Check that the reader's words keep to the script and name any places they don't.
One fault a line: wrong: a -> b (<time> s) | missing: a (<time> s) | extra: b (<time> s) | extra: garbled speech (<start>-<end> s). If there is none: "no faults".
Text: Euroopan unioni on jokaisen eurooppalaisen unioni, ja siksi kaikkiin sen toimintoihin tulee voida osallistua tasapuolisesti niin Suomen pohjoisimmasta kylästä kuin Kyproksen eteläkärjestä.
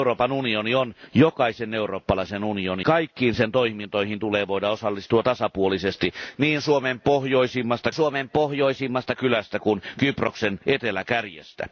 missing: ja siksi (2.9 s)
extra: Suomen pohjoisimmasta (7.9 s)